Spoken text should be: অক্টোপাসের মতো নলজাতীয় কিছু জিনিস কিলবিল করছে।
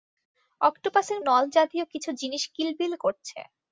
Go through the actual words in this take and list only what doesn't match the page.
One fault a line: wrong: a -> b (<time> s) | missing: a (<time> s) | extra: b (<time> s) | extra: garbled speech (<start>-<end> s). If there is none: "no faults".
missing: মতো (1.2 s)